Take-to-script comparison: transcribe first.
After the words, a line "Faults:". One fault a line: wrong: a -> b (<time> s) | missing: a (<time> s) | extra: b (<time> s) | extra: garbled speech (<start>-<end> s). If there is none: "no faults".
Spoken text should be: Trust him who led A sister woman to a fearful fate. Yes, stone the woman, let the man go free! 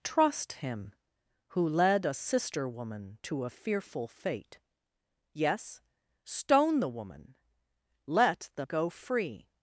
Trust him who led A sister woman to a fearful fate. Yes, stone the woman, let the go free!
Faults:
missing: man (8.7 s)